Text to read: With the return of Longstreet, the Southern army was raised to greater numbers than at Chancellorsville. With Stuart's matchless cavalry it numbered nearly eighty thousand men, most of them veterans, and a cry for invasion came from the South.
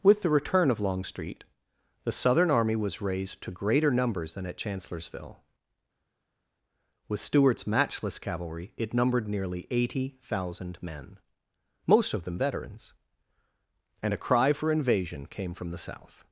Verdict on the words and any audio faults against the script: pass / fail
pass